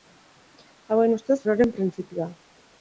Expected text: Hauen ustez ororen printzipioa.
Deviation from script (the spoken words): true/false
false